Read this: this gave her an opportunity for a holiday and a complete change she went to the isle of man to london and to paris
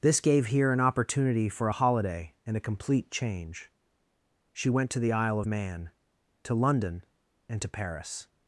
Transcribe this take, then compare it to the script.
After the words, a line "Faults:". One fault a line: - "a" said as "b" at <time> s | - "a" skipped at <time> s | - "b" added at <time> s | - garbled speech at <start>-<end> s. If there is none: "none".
this gave here an opportunity for a holiday and a complete change she went to the isle of man to london and to paris
Faults:
- "her" said as "here" at 0.5 s